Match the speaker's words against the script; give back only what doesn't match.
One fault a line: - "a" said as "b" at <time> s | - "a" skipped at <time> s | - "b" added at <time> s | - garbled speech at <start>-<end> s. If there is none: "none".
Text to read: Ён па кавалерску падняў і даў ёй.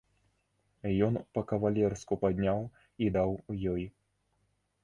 none